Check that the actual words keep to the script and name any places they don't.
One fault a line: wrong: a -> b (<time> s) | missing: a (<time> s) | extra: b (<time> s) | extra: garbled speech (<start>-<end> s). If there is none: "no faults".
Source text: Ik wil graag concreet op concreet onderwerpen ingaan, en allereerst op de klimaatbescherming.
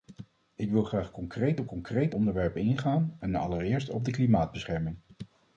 no faults